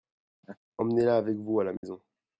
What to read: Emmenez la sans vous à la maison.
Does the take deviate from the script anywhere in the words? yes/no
yes